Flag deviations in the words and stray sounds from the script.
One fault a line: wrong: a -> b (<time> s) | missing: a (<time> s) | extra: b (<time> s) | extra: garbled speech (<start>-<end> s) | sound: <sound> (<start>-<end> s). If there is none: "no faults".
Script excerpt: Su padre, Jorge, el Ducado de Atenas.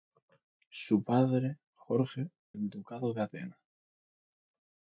no faults